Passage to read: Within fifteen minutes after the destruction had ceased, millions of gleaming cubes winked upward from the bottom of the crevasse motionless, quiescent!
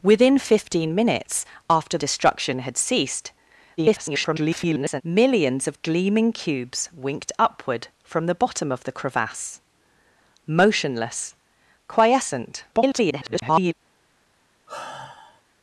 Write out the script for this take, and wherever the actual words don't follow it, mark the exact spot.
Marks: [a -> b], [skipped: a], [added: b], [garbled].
Within fifteen minutes after [skipped: the] destruction had ceased, [garbled] millions of gleaming cubes winked upward from the bottom of the crevasse motionless, quiescent! [garbled]